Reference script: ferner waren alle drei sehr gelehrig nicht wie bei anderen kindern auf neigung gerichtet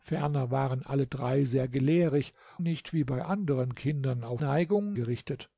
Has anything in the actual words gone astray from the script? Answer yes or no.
no